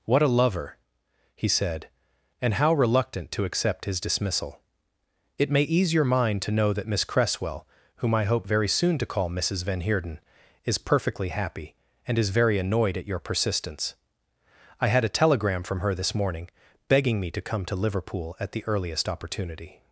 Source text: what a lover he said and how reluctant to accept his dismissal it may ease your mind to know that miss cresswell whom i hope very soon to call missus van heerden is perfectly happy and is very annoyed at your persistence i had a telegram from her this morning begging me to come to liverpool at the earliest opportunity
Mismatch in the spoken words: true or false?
false